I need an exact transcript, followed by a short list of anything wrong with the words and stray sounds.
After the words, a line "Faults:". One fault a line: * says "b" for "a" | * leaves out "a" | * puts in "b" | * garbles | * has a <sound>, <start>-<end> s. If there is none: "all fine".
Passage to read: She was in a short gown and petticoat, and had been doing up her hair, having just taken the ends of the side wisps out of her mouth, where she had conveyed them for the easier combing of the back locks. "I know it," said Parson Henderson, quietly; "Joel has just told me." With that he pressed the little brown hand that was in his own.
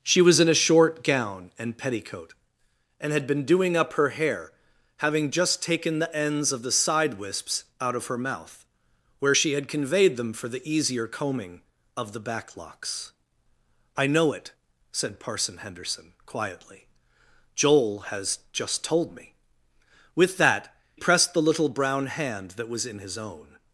She was in a short gown and petticoat, and had been doing up her hair, having just taken the ends of the side wisps out of her mouth, where she had conveyed them for the easier combing of the back locks. "I know it," said Parson Henderson, quietly; "Joel has just told me." With that pressed the little brown hand that was in his own.
Faults:
* leaves out "he"